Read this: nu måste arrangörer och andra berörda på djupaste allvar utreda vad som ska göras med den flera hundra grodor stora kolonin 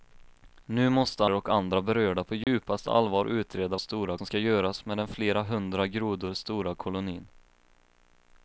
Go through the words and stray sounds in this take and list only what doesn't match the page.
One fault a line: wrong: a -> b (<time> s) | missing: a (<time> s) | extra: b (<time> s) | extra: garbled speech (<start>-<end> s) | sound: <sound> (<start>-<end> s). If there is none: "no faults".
missing: arrangörer (1.2 s)
sound: dropout (2.4-2.5 s)
wrong: vad -> stora (3.8 s)